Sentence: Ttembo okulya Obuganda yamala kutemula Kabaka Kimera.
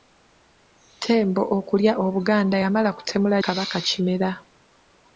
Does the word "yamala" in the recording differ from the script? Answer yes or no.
no